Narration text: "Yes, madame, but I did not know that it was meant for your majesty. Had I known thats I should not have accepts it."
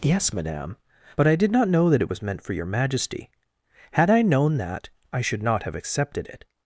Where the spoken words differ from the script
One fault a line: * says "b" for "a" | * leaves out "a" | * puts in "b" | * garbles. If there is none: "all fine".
* says "that" for "thats"
* says "accepted" for "accepts"